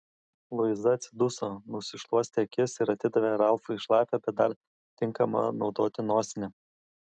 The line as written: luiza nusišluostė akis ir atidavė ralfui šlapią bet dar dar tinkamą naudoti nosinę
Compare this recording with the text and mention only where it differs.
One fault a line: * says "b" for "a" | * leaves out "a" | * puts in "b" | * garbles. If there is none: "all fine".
* puts in "atsiduso"
* leaves out "dar"